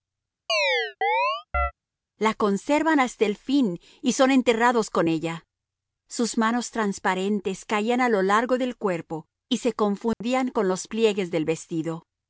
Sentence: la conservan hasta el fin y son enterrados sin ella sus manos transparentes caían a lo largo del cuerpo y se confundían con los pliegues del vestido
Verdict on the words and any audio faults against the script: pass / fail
fail